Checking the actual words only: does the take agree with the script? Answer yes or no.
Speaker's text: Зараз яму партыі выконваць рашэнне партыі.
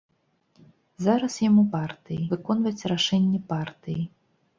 yes